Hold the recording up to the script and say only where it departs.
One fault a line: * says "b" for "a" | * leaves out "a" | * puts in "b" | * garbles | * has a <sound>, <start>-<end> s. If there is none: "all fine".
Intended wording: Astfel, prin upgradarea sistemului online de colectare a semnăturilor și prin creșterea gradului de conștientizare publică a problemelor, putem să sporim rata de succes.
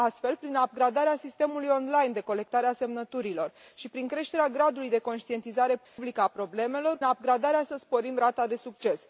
* has a dropout, 5.8-6.0 s
* says "upgradarea" for "putem"